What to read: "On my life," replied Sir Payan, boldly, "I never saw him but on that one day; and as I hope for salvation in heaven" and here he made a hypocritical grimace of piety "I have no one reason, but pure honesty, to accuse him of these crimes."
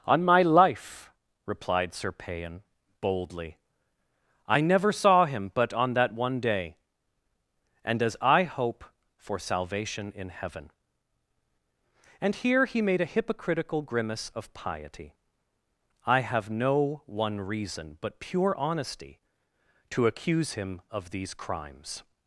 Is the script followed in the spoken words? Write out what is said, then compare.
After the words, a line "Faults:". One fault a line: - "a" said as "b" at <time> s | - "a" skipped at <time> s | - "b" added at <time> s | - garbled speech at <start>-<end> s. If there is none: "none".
"On my life," replied Sir Payan, boldly, "I never saw him but on that one day; and as I hope for salvation in heaven" and here he made a hypocritical grimace of piety "I have no one reason, but pure honesty, to accuse him of these crimes."
Faults:
none